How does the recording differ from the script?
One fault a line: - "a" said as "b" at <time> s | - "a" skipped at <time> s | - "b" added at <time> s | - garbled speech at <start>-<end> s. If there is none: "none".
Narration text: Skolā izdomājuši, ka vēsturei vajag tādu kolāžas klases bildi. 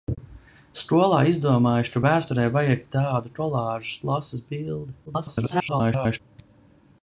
- garbled speech at 5.1-6.2 s